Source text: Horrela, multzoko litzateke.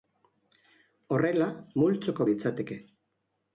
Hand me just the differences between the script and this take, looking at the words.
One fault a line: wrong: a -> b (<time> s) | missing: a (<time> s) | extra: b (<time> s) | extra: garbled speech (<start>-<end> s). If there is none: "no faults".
no faults